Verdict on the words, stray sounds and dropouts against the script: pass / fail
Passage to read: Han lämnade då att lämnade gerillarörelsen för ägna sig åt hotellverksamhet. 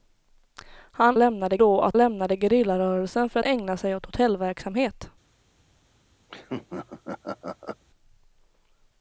fail